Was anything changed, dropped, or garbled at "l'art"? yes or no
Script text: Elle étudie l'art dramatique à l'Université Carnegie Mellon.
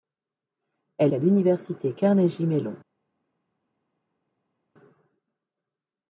yes